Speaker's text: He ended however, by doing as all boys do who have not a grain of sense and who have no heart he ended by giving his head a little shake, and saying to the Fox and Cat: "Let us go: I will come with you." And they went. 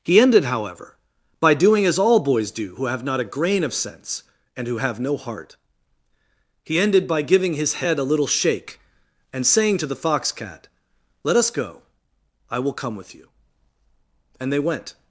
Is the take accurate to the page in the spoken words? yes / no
no